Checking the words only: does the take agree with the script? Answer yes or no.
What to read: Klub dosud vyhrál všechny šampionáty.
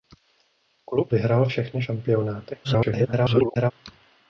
no